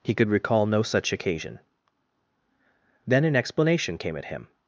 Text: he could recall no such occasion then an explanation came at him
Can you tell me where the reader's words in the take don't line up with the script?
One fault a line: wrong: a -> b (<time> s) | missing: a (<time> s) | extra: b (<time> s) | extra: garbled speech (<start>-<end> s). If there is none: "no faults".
no faults